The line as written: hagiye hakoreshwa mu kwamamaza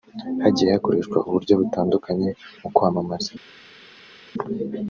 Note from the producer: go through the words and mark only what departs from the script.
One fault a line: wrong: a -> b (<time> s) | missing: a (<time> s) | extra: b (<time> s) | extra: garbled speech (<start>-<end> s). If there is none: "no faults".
extra: uburyo butandukanye (1.3 s)